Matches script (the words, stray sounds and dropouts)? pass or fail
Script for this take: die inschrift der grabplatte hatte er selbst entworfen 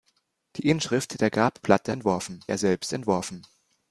fail